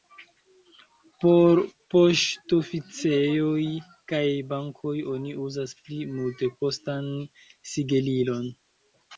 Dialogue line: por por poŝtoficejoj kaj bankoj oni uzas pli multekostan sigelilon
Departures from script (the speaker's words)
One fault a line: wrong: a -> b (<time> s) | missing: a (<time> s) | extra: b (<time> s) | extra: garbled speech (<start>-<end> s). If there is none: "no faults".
missing: por (1.6 s)